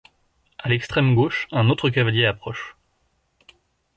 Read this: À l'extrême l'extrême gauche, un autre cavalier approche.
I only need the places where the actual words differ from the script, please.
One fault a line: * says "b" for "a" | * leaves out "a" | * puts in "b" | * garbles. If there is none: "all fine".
* leaves out "l'extrême"